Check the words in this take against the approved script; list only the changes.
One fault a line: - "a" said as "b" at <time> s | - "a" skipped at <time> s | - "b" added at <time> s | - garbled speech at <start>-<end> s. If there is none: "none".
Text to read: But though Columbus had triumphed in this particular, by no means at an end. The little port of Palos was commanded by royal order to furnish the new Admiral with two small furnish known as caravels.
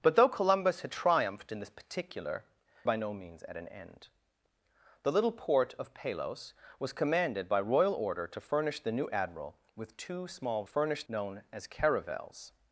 none